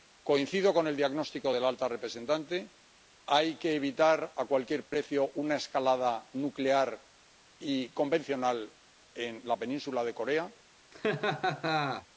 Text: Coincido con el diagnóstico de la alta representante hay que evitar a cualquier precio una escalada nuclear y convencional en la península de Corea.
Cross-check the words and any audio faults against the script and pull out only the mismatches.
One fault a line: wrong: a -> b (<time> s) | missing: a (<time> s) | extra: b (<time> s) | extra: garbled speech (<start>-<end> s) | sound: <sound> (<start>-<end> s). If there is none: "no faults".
sound: dropout (4.9-4.9 s)
sound: laugh (10.9-12.1 s)